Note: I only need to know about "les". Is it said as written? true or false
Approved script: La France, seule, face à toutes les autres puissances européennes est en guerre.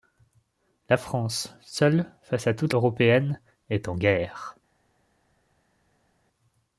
false